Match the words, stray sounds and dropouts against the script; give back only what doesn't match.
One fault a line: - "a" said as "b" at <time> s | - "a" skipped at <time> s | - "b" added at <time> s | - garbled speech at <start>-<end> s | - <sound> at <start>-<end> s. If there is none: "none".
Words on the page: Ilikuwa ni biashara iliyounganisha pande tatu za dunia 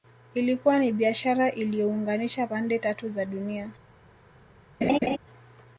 - laugh at 4.8-5.2 s